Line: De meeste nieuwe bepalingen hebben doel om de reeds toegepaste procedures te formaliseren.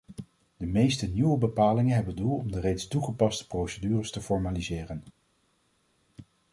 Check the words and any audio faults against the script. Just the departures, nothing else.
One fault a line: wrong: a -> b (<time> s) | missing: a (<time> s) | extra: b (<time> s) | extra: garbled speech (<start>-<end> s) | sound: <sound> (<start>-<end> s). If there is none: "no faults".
no faults